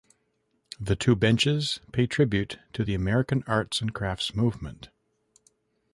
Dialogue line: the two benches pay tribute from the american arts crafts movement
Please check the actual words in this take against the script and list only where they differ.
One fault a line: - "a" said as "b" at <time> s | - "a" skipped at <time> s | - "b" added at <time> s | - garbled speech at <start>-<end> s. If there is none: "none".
- "from" said as "to" at 2.7 s
- "and" added at 3.8 s